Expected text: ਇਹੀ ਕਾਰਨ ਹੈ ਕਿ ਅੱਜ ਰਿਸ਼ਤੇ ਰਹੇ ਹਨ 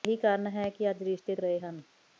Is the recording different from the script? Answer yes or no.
no